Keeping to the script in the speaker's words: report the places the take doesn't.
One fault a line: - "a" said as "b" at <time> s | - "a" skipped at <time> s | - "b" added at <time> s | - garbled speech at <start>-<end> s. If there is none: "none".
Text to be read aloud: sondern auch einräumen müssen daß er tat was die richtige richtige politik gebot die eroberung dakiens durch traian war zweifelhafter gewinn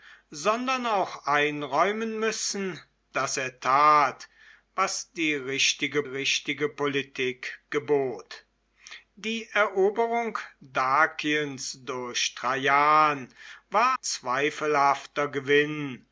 none